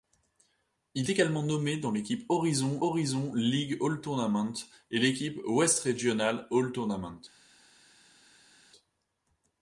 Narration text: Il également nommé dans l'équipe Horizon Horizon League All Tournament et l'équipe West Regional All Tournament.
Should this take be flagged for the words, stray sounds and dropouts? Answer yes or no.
no